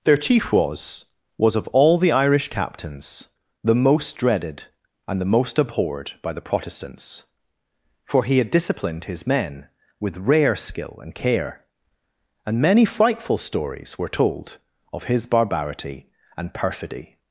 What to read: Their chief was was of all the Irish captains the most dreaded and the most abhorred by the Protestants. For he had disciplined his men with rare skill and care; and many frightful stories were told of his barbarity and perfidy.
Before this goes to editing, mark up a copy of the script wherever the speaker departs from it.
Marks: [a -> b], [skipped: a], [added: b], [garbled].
Their chief was was of all the Irish captains the most dreaded and the most abhorred by the Protestants. For he had disciplined his men with rare skill and care; and many frightful stories were told of his barbarity and perfidy.